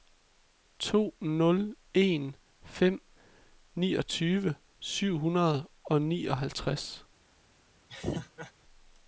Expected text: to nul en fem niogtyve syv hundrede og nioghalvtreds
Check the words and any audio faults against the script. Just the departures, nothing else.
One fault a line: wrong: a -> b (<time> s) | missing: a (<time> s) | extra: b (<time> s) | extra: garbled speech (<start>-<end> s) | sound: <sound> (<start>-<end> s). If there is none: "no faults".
sound: laugh (7.9-8.5 s)